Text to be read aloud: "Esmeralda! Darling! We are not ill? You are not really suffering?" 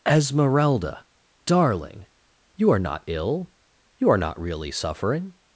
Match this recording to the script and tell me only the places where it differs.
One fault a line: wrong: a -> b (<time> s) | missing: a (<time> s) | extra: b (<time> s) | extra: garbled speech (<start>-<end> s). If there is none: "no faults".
wrong: We -> You (2.5 s)